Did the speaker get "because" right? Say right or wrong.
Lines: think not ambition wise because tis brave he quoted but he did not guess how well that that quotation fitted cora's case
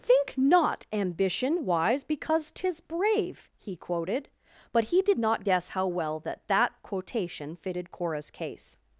right